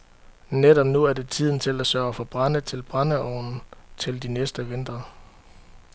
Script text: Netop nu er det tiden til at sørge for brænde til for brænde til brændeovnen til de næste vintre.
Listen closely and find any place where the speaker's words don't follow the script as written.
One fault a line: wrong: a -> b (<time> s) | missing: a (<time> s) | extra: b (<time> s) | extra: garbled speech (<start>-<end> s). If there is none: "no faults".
missing: for brænde til (2.8 s)